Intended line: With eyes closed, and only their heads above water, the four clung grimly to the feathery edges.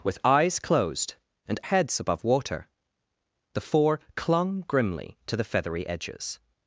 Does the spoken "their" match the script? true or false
false